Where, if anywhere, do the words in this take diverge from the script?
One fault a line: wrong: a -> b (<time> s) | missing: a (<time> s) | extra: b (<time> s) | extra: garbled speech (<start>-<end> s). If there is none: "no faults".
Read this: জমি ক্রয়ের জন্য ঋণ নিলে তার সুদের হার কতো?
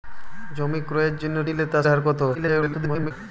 missing: ঋণ (1.4 s)
missing: সুদের (1.8 s)
extra: garbled speech (2.3-3.1 s)